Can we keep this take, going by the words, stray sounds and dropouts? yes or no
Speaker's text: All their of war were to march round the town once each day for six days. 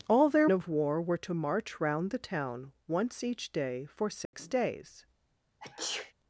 no